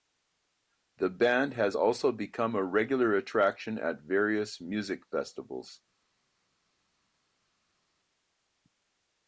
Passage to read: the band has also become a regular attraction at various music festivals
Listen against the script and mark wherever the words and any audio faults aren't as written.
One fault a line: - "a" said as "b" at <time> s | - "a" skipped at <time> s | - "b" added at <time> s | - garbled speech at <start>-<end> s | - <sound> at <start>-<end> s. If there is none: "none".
none